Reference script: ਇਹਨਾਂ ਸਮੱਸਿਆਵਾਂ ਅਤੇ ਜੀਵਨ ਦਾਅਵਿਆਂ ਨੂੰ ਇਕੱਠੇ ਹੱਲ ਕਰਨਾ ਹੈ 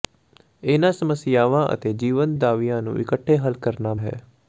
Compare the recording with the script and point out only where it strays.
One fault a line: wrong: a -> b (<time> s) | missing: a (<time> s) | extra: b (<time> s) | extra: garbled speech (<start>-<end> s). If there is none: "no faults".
no faults